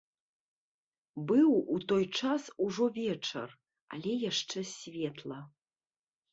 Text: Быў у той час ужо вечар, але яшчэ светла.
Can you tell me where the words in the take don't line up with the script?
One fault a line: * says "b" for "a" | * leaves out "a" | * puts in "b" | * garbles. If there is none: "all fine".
all fine